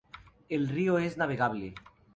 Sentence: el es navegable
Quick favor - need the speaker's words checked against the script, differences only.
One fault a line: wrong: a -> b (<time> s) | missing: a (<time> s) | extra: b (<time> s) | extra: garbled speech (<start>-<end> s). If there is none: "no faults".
extra: río (0.7 s)